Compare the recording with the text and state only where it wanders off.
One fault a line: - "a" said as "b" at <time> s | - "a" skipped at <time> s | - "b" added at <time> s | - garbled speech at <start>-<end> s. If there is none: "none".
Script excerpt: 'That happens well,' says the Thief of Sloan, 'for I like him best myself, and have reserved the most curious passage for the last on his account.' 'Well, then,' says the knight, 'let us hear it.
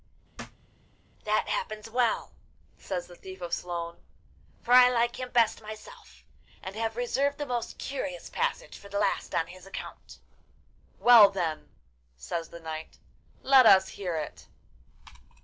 none